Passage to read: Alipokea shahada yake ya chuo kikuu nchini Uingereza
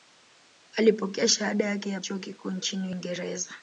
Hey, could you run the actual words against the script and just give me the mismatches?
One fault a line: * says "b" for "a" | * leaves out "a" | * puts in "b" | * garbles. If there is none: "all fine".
all fine